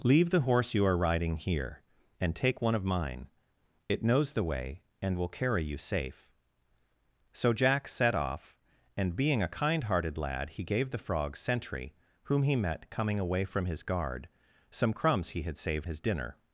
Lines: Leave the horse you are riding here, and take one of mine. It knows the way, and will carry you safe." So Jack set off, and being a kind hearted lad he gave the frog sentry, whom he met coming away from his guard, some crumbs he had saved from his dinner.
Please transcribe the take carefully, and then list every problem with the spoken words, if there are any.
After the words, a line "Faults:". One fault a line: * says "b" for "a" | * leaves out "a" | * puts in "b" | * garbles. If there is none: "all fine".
Leave the horse you are riding here, and take one of mine. It knows the way, and will carry you safe." So Jack set off, and being a kind hearted lad he gave the frog sentry, whom he met coming away from his guard, some crumbs he had saved his dinner.
Faults:
* leaves out "from"